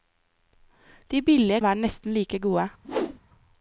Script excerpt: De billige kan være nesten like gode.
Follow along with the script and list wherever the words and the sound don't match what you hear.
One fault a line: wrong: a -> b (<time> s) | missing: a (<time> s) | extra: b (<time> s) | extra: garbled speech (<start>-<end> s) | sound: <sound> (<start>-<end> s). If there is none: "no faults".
missing: kan (1.6 s)
sound: whoosh (2.8-3.2 s)